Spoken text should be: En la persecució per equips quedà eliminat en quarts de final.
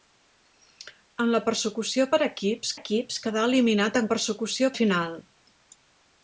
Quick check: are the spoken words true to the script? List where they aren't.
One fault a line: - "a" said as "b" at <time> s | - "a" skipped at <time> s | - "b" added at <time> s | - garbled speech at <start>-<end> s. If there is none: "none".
- "equips" added at 2.8 s
- "quarts" said as "persecució" at 4.1 s